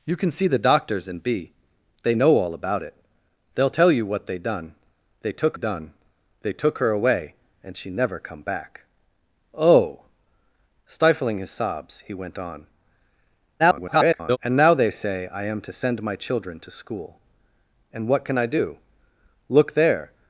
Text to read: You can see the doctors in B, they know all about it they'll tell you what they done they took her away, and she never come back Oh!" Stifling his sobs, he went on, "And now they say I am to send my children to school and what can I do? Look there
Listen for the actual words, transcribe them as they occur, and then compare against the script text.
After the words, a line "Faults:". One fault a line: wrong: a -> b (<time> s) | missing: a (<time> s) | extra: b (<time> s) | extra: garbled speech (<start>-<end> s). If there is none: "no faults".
You can see the doctors in B, they know all about it they'll tell you what they done they took done they took her away, and she never come back Oh!" Stifling his sobs, he went on, [garbled] "And now they say I am to send my children to school and what can I do? Look there
Faults:
extra: done they took (5.5 s)
extra: garbled speech (13.6-14.4 s)